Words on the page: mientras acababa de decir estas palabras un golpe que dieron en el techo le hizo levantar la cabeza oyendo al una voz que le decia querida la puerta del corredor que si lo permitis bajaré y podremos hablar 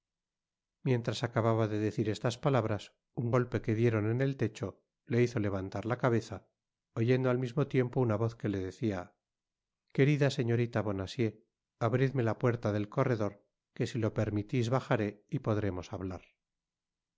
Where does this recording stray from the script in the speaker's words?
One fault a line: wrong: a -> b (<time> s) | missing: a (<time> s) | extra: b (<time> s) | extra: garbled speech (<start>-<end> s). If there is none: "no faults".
extra: mismo tiempo (7.4 s)
extra: señorita bonacieux abridme (10.3 s)